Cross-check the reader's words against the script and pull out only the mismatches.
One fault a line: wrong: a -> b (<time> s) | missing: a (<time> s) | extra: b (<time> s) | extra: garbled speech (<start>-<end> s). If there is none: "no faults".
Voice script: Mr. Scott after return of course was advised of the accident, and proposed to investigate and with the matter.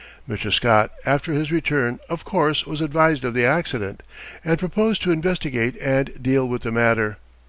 extra: his (1.3 s)
extra: deal (6.2 s)